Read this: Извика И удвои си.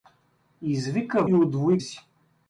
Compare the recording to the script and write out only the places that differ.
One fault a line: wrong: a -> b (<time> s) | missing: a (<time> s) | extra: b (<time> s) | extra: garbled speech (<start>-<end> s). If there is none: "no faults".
no faults